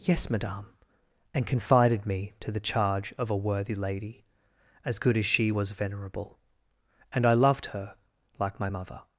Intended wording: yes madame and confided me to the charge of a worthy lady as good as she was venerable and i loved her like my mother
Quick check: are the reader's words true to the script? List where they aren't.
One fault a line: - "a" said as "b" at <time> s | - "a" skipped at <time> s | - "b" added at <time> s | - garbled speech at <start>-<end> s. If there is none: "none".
none